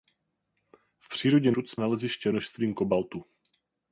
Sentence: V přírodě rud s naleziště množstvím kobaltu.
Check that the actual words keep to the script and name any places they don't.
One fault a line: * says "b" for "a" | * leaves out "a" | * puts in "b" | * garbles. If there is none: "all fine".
all fine